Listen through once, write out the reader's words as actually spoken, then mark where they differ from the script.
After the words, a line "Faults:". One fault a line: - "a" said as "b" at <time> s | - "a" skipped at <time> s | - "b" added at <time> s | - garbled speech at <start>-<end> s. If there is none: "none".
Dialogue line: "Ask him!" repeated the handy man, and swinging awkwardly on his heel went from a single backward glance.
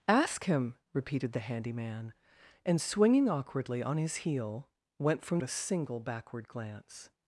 "Ask him!" repeated the handy man, and swinging awkwardly on his heel went from a single backward glance.
Faults:
none